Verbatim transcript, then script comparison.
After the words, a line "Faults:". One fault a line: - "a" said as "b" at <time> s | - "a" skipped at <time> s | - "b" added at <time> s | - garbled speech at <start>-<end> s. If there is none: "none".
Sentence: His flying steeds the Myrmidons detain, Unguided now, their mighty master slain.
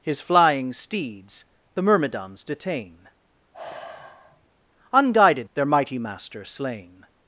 His flying steeds the Myrmidons detain, Unguided their mighty master slain.
Faults:
- "now" skipped at 5.5 s